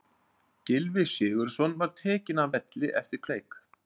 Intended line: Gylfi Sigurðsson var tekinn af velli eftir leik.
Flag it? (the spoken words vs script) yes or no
no